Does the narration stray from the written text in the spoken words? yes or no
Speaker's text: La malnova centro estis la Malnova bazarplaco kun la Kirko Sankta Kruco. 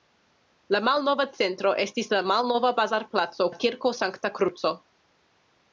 yes